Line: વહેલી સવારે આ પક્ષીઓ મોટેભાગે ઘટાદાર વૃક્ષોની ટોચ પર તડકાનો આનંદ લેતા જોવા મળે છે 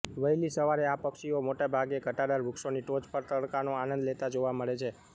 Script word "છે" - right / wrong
right